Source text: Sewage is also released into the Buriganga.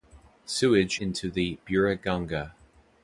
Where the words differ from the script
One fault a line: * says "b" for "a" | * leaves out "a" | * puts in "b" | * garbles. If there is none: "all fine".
* leaves out "is also released"